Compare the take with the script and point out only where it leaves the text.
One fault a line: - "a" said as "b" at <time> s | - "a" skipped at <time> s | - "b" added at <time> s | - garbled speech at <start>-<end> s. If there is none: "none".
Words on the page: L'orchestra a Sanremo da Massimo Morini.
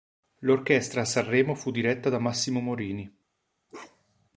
- "fu diretta" added at 1.5 s